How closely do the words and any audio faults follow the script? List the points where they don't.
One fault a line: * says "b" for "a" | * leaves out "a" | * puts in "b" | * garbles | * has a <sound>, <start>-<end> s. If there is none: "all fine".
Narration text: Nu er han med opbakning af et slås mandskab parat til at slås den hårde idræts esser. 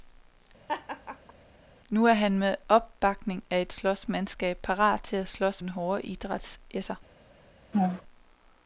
* has a laugh, 0.7-1.3 s
* has a laugh, 7.7-8.0 s